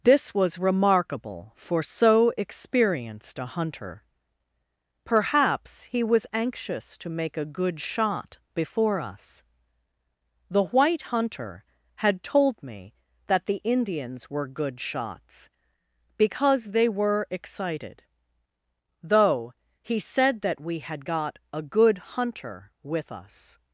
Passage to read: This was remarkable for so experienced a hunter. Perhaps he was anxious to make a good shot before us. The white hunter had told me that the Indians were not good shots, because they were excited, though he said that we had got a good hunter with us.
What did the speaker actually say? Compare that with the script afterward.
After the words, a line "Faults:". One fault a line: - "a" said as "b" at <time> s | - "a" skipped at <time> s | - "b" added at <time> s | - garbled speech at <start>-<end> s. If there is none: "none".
This was remarkable for so experienced a hunter. Perhaps he was anxious to make a good shot before us. The white hunter had told me that the Indians were good shots, because they were excited, though he said that we had got a good hunter with us.
Faults:
- "not" skipped at 14.5 s